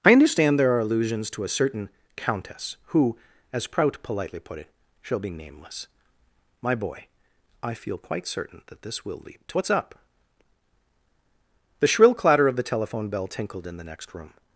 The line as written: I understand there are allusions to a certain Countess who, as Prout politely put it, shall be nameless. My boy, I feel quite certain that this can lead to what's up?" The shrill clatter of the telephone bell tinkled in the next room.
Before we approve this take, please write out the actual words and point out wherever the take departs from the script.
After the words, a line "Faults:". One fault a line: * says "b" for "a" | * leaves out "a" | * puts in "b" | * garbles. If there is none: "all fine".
I understand there are allusions to a certain Countess who, as Prout politely put it, shall be nameless. My boy, I feel quite certain that this will lead to what's up?" The shrill clatter of the telephone bell tinkled in the next room.
Faults:
* says "will" for "can"